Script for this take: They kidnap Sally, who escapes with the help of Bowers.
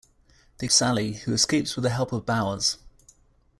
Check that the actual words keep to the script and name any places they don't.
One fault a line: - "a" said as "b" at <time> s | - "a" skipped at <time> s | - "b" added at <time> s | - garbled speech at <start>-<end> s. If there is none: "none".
- "kidnap" skipped at 0.7 s